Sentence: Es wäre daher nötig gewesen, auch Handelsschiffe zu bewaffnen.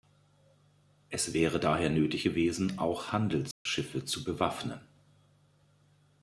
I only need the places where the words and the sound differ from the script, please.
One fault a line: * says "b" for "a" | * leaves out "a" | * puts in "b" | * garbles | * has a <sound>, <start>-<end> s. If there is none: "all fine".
* has a dropout, 3.5-3.7 s